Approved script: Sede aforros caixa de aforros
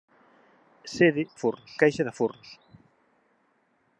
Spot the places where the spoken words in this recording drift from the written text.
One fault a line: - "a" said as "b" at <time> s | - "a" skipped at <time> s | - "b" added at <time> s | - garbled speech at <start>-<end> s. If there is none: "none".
none